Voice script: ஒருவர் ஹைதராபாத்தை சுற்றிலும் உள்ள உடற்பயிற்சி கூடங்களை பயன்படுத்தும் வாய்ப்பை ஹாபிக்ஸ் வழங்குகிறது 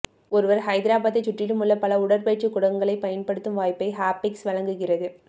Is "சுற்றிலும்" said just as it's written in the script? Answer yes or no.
yes